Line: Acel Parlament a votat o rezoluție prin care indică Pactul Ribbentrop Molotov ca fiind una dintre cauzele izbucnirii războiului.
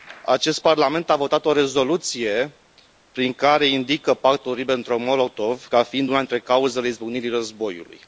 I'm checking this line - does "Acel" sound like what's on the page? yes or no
no